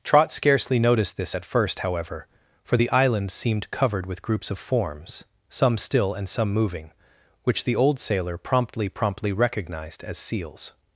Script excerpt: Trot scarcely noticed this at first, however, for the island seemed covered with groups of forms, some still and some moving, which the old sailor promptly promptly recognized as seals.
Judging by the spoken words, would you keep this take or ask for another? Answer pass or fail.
pass